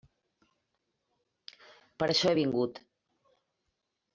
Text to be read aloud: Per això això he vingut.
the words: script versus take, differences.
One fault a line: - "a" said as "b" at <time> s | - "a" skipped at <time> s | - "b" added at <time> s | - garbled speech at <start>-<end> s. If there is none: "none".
- "això" skipped at 2.3 s